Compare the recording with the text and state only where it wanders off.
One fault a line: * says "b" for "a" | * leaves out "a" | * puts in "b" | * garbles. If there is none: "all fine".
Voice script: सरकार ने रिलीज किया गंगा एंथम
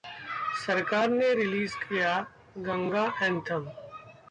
all fine